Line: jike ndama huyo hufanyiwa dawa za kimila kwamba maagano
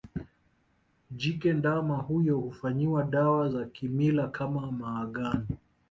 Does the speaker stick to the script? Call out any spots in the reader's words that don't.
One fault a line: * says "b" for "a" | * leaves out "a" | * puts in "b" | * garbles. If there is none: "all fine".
* says "kama" for "kwamba"